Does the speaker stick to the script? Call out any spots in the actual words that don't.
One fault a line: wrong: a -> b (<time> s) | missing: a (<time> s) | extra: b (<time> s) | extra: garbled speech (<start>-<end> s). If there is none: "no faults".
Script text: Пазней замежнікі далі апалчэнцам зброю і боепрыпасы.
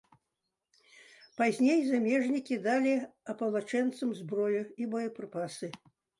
no faults